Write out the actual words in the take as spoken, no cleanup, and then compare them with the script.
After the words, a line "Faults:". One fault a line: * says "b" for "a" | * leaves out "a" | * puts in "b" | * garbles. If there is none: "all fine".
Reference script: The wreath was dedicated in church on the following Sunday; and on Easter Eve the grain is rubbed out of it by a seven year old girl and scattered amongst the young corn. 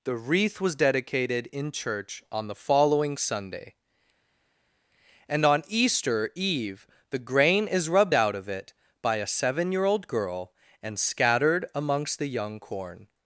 The wreath was dedicated in church on the following Sunday; and on Easter Eve the grain is rubbed out of it by a seven year old girl and scattered amongst the young corn.
Faults:
all fine